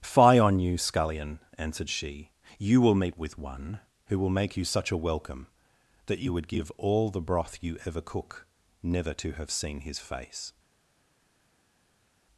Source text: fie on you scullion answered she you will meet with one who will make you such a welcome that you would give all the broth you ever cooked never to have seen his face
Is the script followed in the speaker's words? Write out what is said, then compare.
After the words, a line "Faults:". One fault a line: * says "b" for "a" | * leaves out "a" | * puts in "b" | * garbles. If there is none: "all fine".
fie on you scullion answered she you will meet with one who will make you such a welcome that you would give all the broth you ever cook never to have seen his face
Faults:
* says "cook" for "cooked"